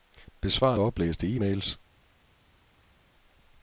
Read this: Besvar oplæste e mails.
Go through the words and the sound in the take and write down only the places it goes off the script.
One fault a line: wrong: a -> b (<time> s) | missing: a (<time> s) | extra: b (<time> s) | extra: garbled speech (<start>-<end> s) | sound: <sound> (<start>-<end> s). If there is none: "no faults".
no faults